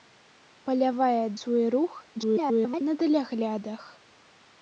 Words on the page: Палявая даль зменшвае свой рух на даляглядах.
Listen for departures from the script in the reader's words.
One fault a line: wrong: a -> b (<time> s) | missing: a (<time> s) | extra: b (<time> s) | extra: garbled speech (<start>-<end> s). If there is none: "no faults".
missing: даль зменшвае (1.2 s)
extra: garbled speech (2.2-2.8 s)